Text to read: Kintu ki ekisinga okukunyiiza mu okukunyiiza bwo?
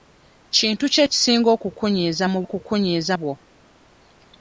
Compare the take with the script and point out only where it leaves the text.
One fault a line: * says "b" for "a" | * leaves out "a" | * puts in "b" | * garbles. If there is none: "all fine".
all fine